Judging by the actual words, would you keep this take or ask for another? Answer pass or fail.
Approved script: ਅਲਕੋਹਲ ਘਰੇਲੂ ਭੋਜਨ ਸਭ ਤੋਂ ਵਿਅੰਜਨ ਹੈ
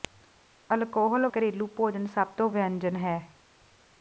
pass